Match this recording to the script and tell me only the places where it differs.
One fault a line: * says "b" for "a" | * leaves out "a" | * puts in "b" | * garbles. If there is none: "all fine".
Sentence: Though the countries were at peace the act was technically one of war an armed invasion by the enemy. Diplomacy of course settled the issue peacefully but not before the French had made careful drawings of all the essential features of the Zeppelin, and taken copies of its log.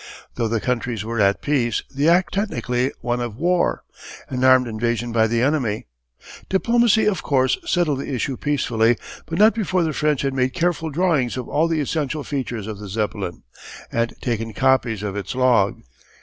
* leaves out "was"